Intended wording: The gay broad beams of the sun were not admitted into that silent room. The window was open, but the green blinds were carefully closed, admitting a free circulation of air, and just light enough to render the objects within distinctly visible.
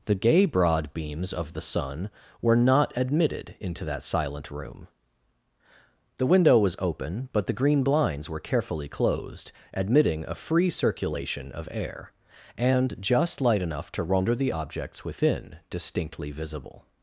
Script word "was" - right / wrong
right